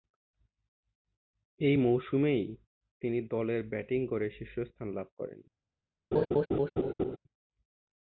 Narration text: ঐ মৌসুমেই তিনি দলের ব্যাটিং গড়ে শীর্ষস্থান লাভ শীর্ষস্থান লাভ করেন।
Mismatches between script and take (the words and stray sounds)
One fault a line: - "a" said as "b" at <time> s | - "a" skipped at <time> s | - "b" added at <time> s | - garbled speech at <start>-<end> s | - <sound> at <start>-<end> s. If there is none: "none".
- "শীর্ষস্থান লাভ" skipped at 5.1 s
- laugh at 6.1-7.2 s